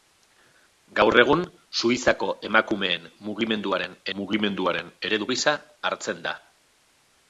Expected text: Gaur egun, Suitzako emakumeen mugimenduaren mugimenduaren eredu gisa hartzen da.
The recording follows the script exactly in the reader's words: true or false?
true